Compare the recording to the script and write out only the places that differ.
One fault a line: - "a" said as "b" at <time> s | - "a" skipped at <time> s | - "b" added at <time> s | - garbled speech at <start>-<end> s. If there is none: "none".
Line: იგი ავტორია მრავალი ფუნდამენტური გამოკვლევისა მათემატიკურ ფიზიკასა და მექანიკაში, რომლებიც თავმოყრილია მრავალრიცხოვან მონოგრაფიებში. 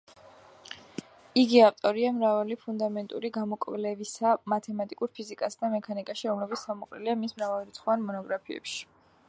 - "მის" added at 7.3 s